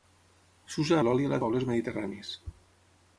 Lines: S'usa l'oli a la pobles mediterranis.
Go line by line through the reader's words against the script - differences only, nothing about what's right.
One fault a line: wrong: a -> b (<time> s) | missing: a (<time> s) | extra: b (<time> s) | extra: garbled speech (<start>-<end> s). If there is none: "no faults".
no faults